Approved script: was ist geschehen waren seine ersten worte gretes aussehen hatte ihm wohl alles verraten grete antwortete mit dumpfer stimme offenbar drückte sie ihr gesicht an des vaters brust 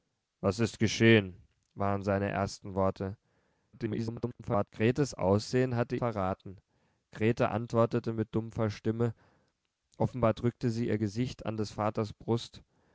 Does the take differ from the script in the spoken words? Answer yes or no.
yes